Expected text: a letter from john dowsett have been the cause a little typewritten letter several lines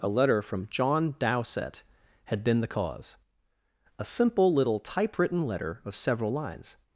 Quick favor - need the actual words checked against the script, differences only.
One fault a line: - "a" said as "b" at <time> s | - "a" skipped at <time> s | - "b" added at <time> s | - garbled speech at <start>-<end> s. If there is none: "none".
- "have" said as "had" at 2.2 s
- "simple" added at 4.0 s
- "of" added at 5.8 s